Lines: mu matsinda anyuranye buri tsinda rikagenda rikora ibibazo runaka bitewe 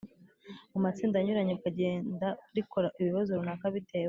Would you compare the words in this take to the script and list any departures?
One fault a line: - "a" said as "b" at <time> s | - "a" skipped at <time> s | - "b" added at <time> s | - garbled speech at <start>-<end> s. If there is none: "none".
- "buri tsinda" skipped at 1.5 s